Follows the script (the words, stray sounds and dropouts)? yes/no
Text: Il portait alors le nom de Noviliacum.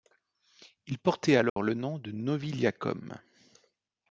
no